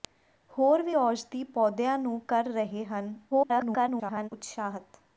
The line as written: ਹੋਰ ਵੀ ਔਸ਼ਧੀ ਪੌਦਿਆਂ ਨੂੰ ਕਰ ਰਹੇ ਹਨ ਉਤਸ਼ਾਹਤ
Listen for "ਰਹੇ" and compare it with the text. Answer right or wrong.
right